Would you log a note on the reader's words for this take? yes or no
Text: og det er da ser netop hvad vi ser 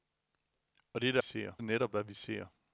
no